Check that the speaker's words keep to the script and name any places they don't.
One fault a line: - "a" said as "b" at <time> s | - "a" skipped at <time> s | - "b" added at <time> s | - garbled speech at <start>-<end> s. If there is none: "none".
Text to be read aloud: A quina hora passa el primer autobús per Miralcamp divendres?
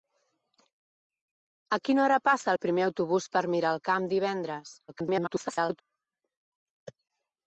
- garbled speech at 4.9-5.8 s